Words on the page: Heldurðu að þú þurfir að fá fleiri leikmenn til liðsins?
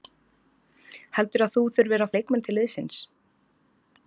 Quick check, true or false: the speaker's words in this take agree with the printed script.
false